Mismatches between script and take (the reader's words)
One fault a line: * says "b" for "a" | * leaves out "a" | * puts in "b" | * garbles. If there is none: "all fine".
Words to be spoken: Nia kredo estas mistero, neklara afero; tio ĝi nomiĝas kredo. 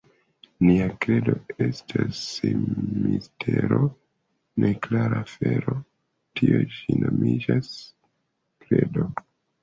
all fine